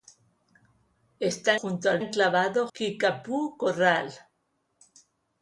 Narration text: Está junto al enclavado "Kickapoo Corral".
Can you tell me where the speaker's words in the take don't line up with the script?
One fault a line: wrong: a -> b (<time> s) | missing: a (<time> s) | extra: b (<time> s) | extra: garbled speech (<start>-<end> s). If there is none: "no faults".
no faults